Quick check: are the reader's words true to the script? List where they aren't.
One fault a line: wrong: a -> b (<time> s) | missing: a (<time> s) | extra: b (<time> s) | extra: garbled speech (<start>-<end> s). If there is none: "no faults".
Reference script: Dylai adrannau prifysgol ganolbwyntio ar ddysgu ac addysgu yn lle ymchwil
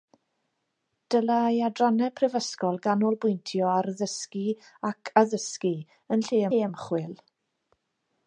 extra: lle (6.5 s)